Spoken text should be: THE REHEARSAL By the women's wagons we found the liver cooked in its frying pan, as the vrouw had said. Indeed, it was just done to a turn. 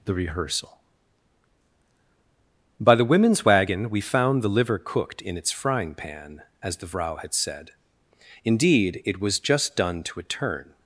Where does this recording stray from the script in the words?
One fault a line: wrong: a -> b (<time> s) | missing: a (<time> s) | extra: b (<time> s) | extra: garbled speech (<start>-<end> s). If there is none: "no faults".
wrong: wagons -> wagon (3.5 s)